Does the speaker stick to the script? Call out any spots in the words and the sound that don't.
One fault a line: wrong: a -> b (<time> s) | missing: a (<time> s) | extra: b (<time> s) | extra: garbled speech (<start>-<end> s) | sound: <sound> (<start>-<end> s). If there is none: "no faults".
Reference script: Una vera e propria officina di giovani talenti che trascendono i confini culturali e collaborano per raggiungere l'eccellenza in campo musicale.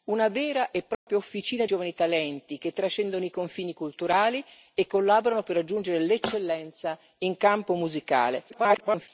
sound: dropout (0.9-1.1 s)
missing: di (1.7 s)
extra: garbled speech (8.5-9.1 s)